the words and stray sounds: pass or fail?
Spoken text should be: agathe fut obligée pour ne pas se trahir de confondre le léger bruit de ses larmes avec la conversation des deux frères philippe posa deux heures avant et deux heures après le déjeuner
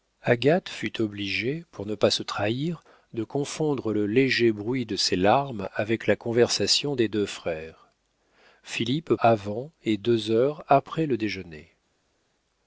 fail